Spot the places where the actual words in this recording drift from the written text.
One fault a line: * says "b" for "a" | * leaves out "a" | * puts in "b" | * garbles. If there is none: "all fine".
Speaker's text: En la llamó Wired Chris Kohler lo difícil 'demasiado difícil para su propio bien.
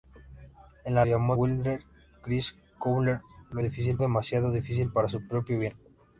all fine